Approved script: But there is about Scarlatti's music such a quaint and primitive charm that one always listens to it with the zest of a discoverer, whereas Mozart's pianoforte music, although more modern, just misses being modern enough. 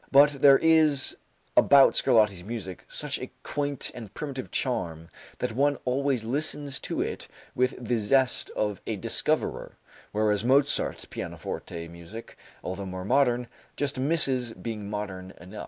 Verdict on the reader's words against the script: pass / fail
pass